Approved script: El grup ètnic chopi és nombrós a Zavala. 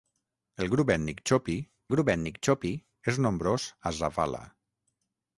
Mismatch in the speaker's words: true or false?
true